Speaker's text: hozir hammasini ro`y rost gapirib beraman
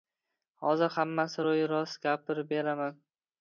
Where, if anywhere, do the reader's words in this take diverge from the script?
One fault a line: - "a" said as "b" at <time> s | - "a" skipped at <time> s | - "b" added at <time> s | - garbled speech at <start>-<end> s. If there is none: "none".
none